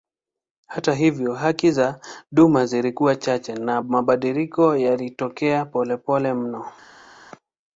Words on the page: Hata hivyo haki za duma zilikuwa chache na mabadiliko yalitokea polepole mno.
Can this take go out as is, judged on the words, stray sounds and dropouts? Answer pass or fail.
pass